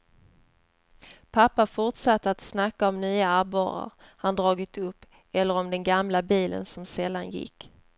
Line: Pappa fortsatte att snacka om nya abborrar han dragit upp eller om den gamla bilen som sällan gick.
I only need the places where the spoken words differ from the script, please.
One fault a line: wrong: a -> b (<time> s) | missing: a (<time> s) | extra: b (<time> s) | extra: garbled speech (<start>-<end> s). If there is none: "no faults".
no faults